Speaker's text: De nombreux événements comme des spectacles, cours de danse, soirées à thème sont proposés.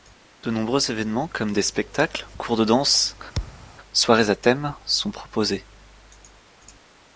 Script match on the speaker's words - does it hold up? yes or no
yes